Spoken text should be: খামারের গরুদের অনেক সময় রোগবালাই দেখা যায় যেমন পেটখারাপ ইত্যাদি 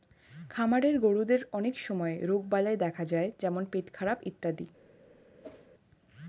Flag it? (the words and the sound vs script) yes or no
yes